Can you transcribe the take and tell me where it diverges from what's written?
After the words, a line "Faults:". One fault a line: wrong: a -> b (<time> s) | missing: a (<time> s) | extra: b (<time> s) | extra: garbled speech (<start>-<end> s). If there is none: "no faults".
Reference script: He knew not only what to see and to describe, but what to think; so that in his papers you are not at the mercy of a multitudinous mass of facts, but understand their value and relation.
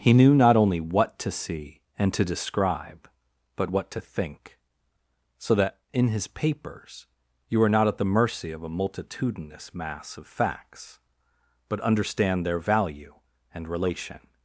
He knew not only what to see and to describe, but what to think; so that in his papers you are not at the mercy of a multitudinous mass of facts, but understand their value and relation.
Faults:
no faults